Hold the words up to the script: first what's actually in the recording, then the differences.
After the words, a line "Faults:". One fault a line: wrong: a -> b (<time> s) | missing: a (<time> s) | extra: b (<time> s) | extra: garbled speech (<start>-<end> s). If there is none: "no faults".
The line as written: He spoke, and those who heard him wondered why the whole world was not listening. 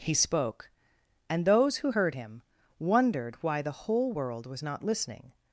He spoke, and those who heard him wondered why the whole world was not listening.
Faults:
no faults